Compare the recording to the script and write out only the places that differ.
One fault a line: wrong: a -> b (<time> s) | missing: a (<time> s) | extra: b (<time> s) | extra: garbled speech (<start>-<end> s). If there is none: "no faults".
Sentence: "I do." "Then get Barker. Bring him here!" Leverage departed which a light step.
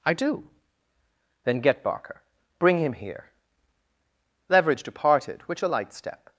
no faults